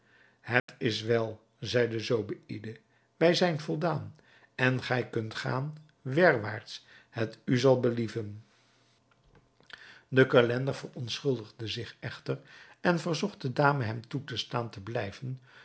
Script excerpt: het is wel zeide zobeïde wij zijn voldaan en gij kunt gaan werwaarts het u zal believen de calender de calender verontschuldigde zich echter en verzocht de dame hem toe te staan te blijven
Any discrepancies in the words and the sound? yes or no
yes